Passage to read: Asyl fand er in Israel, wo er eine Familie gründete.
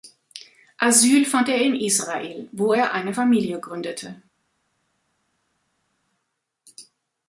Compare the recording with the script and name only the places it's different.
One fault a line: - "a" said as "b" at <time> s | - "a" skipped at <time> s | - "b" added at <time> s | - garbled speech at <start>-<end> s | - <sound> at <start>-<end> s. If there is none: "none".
none